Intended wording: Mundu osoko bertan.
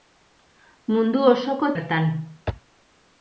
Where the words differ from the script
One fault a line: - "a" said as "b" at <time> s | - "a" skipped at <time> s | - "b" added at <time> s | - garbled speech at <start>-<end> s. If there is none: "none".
none